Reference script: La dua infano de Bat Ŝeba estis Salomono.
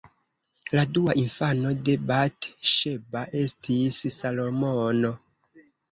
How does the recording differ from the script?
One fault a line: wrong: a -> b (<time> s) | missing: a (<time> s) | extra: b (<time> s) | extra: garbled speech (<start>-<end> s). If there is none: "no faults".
no faults